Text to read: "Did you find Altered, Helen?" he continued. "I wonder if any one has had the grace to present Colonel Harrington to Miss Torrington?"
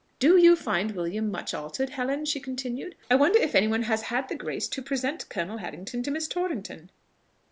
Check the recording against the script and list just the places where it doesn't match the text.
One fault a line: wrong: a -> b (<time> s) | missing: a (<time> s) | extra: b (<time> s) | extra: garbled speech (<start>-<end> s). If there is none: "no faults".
wrong: Did -> Do (0.2 s)
extra: William much (0.9 s)
wrong: he -> she (2.2 s)